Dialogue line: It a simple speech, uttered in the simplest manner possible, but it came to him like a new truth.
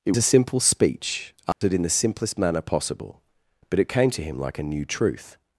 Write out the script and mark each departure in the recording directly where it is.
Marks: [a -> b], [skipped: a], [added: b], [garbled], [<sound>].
It a simple speech, uttered [dropout] in the simplest manner possible, but it came to him like a new truth.